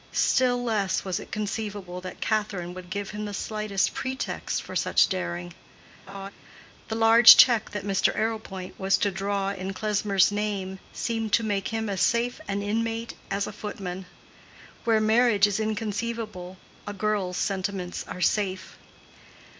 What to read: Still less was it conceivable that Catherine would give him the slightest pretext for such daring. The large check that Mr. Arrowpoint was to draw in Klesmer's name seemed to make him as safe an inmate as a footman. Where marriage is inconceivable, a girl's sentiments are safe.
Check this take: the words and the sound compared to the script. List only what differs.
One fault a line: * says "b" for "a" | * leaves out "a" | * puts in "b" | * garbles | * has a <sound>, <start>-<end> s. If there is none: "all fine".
* has a laugh, 6.1-6.3 s